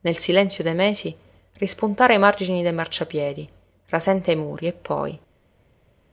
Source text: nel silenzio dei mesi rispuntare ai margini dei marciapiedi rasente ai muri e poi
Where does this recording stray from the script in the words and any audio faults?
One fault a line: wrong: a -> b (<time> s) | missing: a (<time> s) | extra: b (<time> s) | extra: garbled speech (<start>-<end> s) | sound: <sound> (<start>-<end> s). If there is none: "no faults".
no faults